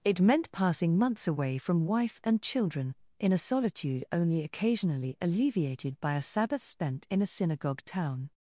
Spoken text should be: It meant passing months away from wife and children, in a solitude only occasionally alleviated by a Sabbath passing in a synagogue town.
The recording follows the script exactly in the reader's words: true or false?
false